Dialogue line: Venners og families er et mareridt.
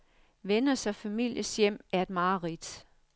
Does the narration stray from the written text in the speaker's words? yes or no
yes